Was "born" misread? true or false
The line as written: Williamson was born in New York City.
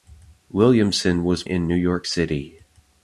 true